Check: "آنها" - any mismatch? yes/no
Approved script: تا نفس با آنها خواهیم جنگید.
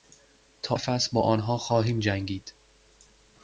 no